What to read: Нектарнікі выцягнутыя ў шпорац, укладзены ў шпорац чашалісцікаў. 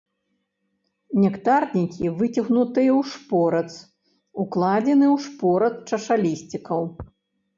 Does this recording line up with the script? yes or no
yes